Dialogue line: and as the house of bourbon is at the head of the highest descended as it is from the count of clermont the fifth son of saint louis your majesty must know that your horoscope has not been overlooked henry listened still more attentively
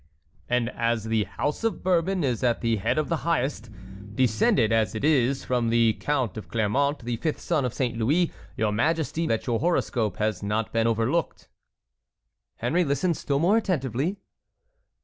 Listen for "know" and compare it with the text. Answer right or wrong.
wrong